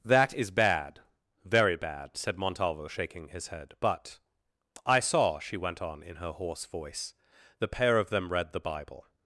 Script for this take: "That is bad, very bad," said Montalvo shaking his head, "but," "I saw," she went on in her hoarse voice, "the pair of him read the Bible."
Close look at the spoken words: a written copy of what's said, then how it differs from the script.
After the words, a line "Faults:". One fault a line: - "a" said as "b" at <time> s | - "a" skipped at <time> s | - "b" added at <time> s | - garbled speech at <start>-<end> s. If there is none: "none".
"That is bad, very bad," said Montalvo shaking his head, "but," "I saw," she went on in her hoarse voice, "the pair of them read the Bible."
Faults:
- "him" said as "them" at 8.1 s